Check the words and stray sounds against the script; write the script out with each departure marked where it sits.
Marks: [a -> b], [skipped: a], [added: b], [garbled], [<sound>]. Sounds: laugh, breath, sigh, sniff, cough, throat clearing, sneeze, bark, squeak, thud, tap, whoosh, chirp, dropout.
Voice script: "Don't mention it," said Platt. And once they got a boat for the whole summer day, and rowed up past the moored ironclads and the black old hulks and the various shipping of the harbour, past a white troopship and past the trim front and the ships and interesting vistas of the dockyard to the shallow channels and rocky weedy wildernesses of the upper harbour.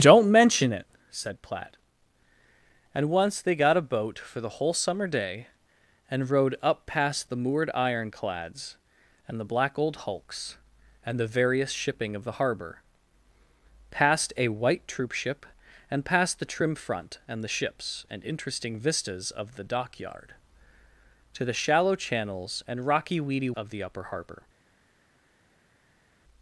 "Don't mention it," said Platt. And once they got a boat for the whole summer day, and rowed up past the moored ironclads and the black old hulks and the various shipping of the harbour, past a white troopship and past the trim front and the ships and interesting vistas of the dockyard to the shallow channels and rocky weedy [skipped: wildernesses] of the upper harbour.